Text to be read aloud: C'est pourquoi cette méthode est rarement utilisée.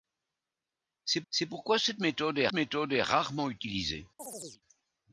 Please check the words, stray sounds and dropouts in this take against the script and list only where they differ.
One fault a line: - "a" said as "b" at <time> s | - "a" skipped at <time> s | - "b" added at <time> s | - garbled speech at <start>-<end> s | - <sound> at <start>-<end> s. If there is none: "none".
- "c'est" added at 1.3 s
- "méthode est" added at 2.5 s
- chirp at 4.2-4.6 s